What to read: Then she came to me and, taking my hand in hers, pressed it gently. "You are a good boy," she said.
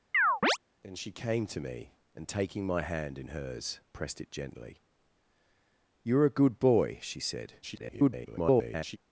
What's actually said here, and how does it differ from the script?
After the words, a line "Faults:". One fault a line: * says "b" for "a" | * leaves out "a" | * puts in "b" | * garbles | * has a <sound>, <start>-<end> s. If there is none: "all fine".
Then she came to me and, taking my hand in hers, pressed it gently. "You are a good boy," she said. [garbled]
Faults:
* has a chirp, 0.1-0.6 s
* garbles